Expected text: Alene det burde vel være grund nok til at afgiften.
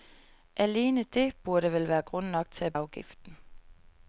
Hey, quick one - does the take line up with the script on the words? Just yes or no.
yes